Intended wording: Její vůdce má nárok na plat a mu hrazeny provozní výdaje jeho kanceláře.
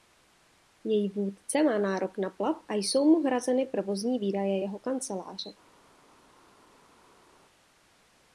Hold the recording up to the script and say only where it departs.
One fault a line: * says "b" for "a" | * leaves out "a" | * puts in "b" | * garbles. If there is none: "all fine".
* puts in "jsou"